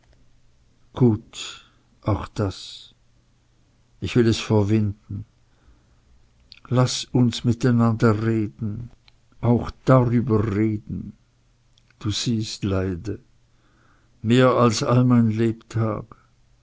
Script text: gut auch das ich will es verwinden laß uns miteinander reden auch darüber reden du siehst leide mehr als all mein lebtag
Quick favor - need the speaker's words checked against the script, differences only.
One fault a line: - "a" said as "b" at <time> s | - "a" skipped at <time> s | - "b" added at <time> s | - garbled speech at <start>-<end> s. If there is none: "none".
none